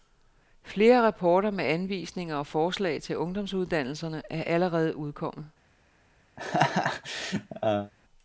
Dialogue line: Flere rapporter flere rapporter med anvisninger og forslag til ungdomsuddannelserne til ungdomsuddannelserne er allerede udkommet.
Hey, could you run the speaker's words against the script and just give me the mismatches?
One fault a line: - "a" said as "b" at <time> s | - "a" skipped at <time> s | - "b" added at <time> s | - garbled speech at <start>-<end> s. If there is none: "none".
- "flere rapporter" skipped at 1.5 s
- "til ungdomsuddannelserne" skipped at 4.2 s